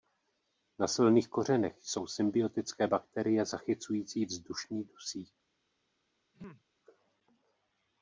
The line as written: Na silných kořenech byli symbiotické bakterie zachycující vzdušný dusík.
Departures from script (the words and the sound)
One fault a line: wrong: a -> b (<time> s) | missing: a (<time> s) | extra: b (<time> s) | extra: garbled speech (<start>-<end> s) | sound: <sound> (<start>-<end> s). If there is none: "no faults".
wrong: byli -> jsou (1.8 s)
sound: throat clearing (6.3-6.6 s)